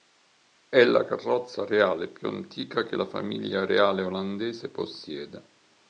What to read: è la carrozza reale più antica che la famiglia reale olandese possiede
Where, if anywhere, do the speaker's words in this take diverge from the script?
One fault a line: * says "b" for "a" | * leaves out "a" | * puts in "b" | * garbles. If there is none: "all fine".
all fine